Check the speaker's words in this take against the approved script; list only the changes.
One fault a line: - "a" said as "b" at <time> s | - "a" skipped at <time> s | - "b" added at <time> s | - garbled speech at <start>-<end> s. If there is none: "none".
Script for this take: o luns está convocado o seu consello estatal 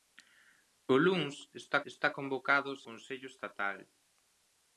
- "está" added at 1.9 s
- "seu" skipped at 2.8 s